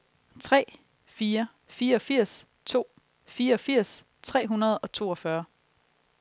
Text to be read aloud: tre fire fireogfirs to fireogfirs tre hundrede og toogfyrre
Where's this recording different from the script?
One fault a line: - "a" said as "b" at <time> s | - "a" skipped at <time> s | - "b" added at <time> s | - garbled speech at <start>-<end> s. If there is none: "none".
none